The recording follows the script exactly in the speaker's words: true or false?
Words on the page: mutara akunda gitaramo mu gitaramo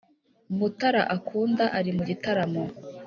false